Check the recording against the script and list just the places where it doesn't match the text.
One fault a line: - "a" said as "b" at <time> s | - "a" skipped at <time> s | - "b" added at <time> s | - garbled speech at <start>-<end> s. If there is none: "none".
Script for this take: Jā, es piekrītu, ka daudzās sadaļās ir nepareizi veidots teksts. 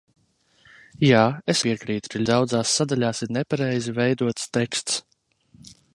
none